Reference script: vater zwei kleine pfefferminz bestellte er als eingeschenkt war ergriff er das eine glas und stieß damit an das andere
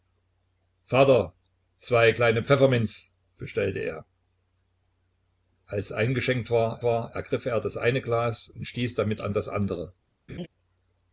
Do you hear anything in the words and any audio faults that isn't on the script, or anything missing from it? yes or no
yes